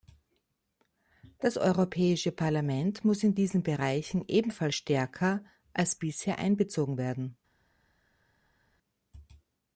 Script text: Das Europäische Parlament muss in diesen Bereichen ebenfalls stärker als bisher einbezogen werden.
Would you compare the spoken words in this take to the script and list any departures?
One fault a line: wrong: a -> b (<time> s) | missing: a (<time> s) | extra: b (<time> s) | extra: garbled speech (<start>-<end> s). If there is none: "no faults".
no faults